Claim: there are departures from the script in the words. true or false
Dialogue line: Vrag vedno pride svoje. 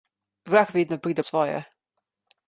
false